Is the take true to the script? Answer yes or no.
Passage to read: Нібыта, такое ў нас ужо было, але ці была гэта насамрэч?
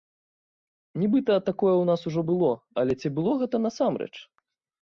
no